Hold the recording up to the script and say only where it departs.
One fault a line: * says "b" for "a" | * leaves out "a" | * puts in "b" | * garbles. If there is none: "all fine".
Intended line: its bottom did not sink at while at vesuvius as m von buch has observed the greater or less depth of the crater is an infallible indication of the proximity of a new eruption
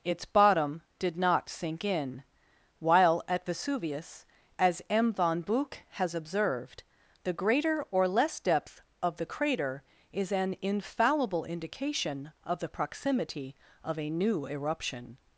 * says "in" for "at"